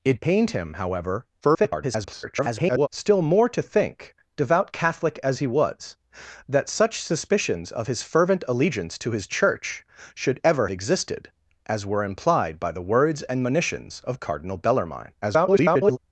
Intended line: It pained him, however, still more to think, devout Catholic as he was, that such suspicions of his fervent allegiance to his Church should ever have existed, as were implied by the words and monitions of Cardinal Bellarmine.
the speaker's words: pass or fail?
fail